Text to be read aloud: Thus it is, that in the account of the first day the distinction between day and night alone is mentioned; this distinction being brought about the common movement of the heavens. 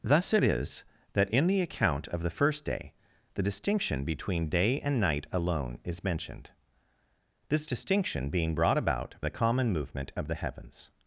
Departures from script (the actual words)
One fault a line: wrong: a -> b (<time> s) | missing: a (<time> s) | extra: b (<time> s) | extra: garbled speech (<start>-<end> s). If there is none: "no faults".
no faults